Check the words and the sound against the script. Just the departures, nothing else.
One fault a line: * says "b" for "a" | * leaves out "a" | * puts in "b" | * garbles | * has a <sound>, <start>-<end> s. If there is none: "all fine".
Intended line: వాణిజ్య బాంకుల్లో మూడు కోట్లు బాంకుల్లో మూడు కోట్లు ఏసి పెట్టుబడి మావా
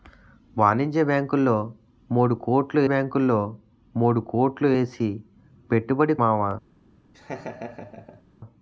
* has a laugh, 7.1-8.2 s